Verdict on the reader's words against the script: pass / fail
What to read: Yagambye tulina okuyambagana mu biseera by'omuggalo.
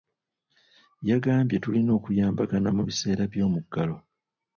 pass